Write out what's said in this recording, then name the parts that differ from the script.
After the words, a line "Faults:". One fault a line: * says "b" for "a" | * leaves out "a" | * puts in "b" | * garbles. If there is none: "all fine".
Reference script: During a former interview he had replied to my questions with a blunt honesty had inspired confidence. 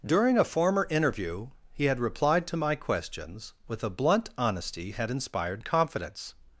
During a former interview he had replied to my questions with a blunt honesty had inspired confidence.
Faults:
all fine